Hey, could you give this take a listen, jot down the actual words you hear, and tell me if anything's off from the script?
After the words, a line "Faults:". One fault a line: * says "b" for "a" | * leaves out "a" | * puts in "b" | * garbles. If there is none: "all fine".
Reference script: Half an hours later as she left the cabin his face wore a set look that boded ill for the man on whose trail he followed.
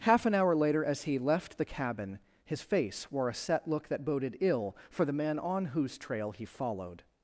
Half an hour later as he left the cabin his face wore a set look that boded ill for the man on whose trail he followed.
Faults:
* says "hour" for "hours"
* says "he" for "she"